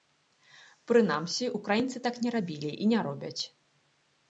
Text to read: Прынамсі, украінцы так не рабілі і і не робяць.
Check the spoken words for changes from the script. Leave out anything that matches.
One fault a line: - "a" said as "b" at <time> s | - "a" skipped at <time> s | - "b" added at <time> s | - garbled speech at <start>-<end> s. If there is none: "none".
- "і" skipped at 2.9 s